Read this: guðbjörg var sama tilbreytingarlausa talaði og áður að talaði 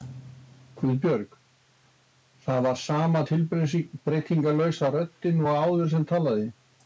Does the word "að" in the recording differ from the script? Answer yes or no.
yes